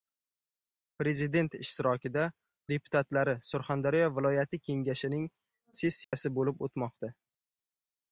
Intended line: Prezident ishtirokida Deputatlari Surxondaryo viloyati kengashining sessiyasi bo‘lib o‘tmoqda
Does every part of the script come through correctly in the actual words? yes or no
yes